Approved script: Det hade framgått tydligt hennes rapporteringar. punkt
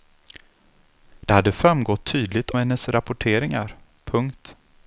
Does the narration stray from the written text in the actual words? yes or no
no